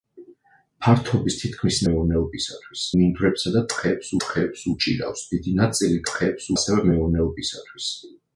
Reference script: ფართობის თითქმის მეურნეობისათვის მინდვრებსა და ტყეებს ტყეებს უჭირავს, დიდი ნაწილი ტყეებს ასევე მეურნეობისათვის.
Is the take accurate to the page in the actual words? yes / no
yes